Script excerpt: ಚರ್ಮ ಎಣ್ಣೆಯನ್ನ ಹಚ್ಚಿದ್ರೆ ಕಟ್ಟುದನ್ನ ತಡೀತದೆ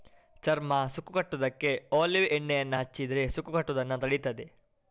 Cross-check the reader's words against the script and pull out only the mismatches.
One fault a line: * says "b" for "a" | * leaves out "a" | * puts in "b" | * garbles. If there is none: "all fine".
* puts in "ಸುಕ್ಕು ಕಟ್ಟುದಕ್ಕೆ ಒಲೀವ್"
* puts in "ಸುಕ್ಕು"